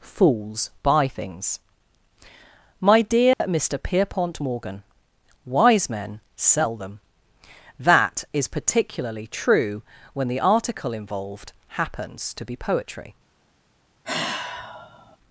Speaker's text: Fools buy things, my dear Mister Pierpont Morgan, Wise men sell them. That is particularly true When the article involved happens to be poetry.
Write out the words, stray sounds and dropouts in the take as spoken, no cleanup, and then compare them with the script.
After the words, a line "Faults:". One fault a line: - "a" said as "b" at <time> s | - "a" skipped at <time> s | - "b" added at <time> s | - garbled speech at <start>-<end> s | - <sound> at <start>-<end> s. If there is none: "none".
Fools buy things, my dear Mister Pierpont Morgan, Wise men sell them. That is particularly true When the article involved happens to be poetry.
Faults:
- dropout at 3.3-3.4 s
- sigh at 14.0-15.2 s